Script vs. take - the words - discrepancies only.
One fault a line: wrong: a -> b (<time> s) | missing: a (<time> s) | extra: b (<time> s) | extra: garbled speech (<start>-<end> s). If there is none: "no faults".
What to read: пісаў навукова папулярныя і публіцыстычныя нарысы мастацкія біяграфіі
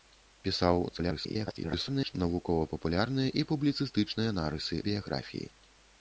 extra: garbled speech (0.9-2.1 s)
missing: мастацкія (4.8 s)